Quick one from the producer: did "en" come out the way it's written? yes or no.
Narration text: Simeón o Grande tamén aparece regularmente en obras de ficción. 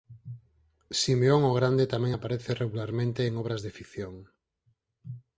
yes